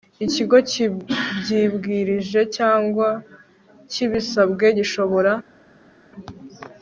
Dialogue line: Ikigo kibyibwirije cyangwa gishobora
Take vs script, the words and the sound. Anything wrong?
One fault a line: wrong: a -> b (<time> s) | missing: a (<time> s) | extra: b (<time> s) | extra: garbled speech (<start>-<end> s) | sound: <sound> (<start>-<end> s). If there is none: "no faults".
extra: kibisabwe (3.9 s)